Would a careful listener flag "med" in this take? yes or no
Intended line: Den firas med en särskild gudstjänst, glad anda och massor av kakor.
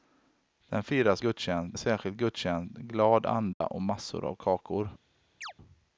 yes